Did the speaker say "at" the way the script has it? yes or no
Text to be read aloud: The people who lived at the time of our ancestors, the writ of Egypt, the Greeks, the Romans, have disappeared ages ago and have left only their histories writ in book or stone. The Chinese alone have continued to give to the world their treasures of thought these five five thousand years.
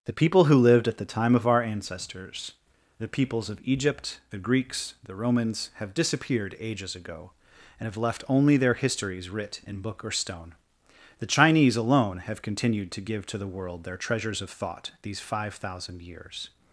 yes